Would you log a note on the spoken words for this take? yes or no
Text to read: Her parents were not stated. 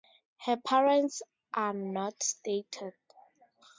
yes